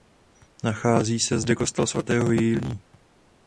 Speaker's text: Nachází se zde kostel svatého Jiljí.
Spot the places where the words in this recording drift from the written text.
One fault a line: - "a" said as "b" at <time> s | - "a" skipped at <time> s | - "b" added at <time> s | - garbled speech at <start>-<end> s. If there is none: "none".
none